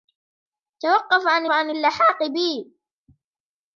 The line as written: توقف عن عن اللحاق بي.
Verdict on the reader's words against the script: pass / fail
pass